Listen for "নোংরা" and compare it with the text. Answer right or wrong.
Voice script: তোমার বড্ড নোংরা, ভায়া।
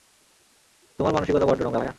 right